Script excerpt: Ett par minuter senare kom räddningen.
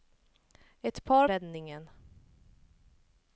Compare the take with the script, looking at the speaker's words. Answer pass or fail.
fail